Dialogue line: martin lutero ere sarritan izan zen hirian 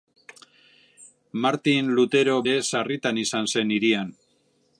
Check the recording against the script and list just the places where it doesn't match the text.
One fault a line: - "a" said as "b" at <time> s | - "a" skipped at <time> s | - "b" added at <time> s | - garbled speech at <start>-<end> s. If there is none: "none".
none